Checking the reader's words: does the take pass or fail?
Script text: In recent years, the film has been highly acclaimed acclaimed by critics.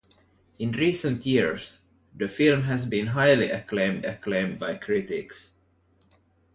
pass